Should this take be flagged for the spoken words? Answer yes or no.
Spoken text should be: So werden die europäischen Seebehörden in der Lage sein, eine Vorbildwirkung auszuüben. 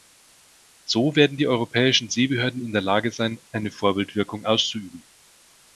no